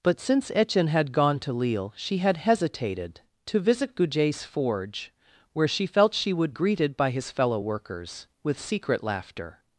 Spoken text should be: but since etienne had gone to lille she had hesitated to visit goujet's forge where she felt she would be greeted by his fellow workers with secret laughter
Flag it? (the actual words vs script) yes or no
yes